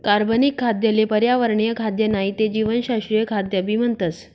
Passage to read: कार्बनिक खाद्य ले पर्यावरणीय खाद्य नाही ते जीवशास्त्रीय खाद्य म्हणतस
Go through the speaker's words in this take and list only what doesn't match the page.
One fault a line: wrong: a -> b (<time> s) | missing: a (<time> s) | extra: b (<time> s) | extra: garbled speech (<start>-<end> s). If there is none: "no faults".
extra: भी (3.6 s)